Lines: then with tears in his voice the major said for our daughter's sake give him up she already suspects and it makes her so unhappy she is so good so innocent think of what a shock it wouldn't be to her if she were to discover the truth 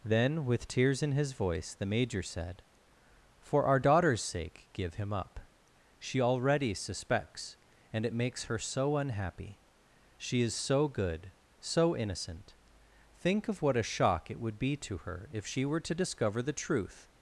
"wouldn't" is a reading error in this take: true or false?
true